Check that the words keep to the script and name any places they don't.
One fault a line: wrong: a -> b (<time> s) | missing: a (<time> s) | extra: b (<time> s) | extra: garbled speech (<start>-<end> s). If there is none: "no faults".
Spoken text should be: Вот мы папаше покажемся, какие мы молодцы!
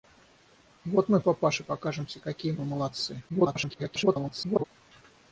extra: garbled speech (3.3-4.6 s)